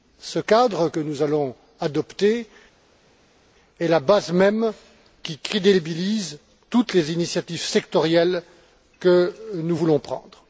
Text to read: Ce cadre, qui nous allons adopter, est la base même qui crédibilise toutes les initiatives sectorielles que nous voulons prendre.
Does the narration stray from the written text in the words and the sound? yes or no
yes